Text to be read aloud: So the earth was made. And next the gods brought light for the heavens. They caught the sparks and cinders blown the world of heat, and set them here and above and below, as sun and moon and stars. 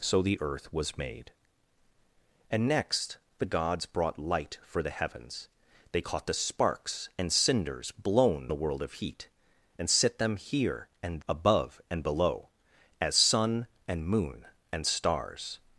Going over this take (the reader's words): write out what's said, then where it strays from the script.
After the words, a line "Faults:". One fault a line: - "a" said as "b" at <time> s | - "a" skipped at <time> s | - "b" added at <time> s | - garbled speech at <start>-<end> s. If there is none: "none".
So the earth was made. And next the gods brought light for the heavens. They caught the sparks and cinders blown the world of heat, and set them here and above and below, as sun and moon and stars.
Faults:
none